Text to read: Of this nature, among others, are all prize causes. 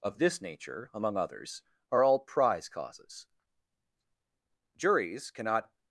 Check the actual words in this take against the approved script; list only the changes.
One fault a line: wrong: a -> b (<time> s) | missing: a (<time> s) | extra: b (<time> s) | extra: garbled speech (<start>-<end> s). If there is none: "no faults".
extra: Juries cannot (4.8 s)